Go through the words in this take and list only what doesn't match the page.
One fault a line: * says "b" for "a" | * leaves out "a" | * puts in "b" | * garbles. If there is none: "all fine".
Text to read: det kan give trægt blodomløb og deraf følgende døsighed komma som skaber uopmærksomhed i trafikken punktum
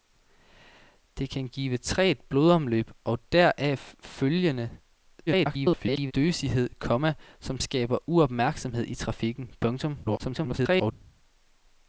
* garbles
* garbles